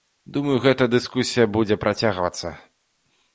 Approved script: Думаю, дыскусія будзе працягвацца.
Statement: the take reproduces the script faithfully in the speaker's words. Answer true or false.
false